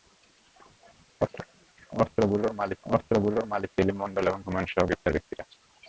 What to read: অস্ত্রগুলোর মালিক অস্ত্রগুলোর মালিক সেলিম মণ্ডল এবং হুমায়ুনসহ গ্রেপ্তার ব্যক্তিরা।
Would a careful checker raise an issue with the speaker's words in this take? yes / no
no